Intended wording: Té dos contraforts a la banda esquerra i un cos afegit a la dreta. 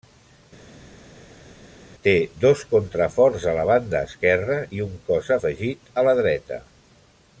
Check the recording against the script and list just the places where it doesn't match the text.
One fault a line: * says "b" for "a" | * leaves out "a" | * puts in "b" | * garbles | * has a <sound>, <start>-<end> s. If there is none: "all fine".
all fine